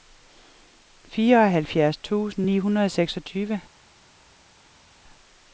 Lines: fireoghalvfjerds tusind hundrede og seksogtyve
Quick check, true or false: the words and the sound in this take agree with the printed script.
false